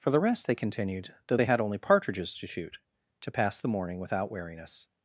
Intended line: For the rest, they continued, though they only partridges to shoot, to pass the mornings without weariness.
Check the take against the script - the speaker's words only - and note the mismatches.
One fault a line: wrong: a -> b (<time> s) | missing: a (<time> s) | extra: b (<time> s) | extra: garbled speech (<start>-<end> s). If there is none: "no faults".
extra: had (1.4 s)
wrong: mornings -> morning (3.7 s)